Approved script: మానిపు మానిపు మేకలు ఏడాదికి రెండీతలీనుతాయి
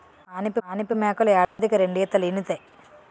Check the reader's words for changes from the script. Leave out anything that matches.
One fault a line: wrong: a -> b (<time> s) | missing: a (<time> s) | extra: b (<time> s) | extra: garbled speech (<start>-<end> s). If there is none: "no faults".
no faults